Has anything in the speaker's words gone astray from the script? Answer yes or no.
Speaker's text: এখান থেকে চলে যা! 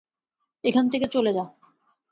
no